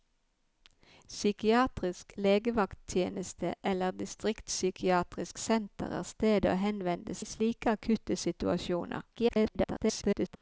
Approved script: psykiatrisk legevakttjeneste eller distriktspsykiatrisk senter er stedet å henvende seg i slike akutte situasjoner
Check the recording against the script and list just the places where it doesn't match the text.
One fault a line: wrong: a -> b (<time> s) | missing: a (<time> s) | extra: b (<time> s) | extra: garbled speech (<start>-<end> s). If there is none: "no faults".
missing: seg (7.2 s)
extra: garbled speech (9.1-10.4 s)